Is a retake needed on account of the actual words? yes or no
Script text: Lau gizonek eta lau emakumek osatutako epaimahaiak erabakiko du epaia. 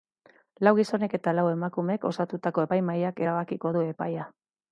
no